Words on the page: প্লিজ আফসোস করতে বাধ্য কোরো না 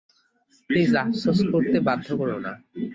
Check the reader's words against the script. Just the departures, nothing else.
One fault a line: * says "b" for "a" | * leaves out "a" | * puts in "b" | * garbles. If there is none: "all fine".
all fine